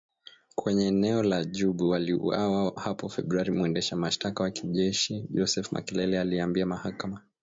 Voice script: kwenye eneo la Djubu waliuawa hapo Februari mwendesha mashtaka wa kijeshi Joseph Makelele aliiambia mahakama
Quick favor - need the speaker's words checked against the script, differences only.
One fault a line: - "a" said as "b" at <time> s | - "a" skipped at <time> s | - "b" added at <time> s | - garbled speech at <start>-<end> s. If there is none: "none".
none